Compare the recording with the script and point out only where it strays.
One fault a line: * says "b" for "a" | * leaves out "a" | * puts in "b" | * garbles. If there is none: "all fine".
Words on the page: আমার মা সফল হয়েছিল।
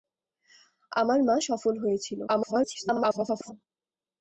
* garbles